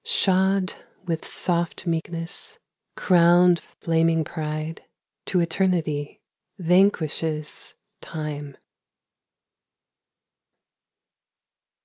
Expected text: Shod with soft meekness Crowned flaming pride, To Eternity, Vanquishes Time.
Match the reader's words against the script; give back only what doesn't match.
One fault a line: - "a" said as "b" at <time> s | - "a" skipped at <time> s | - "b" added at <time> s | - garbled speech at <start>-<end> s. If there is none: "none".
none